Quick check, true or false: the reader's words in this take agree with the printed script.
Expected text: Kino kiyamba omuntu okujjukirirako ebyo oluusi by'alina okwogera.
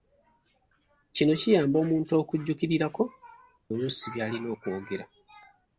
false